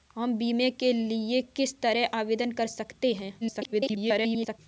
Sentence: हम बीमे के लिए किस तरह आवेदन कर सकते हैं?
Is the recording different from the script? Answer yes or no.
yes